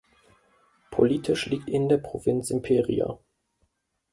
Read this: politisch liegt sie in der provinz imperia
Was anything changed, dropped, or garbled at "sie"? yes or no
yes